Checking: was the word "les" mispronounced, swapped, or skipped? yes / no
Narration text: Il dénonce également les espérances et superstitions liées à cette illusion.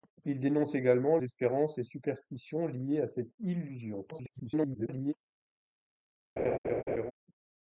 yes